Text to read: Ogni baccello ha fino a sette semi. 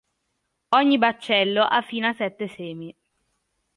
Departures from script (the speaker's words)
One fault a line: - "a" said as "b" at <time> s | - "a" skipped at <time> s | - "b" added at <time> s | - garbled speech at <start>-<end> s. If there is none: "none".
none